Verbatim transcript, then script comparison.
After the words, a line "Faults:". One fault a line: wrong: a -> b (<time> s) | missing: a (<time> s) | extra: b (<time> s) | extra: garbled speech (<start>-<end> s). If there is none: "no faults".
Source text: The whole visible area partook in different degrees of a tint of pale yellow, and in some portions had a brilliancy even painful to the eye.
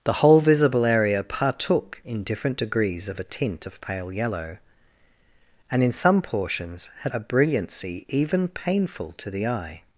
The whole visible area partook in different degrees of a tint of pale yellow, and in some portions had a brilliancy even painful to the eye.
Faults:
no faults